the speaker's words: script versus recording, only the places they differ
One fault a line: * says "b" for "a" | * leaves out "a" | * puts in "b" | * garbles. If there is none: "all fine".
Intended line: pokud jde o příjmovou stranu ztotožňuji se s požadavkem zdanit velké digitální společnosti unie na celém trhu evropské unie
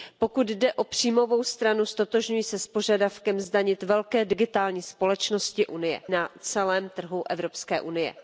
all fine